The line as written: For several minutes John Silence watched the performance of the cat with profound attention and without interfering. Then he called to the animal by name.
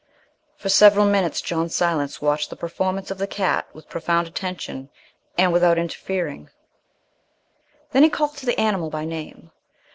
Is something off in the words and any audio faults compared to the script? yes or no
no